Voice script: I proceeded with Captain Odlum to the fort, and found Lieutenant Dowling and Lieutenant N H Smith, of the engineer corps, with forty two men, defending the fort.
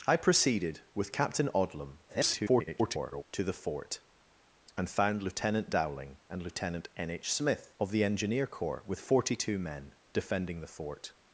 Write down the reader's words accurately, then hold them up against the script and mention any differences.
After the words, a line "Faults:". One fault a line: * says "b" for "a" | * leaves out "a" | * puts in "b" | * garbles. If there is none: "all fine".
I proceeded with Captain Odlum [garbled] to the fort, and found Lieutenant Dowling and Lieutenant N H Smith, of the engineer corps, with forty two men, defending the fort.
Faults:
* garbles